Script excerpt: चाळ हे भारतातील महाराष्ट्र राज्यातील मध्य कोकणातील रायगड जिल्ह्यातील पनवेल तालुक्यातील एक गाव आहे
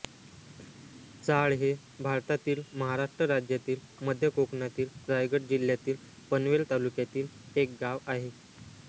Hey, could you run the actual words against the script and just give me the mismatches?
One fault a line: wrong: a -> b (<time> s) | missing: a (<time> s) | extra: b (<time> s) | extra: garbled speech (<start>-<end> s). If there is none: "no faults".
no faults